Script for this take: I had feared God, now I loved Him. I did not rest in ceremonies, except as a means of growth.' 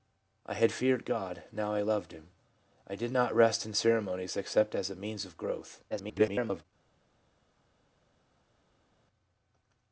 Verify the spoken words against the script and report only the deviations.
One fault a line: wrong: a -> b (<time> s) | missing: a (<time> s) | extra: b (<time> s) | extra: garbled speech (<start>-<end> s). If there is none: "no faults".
extra: garbled speech (5.9-6.7 s)